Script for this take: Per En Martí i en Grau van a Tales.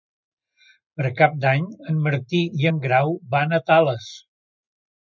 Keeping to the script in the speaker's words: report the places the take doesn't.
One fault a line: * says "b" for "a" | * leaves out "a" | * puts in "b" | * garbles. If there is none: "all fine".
* puts in "Cap d'Any"